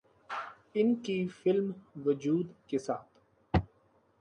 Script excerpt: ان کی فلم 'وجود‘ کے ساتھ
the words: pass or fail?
pass